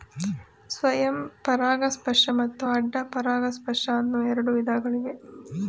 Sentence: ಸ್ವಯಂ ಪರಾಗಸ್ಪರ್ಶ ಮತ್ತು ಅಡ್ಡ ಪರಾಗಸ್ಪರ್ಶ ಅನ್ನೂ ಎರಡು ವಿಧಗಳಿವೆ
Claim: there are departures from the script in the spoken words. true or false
false